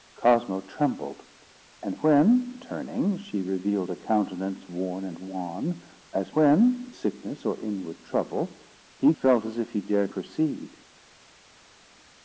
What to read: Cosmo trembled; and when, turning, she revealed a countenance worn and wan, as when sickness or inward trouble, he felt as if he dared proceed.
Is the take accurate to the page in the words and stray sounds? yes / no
yes